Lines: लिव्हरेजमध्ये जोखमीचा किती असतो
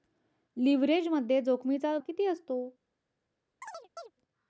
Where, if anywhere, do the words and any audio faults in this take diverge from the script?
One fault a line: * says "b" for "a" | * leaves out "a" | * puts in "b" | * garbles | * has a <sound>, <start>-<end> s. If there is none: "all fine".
* has a chirp, 3.6-4.1 s